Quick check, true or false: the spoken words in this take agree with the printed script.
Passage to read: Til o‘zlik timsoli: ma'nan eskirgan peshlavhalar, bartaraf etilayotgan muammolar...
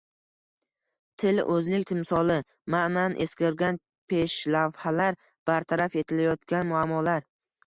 true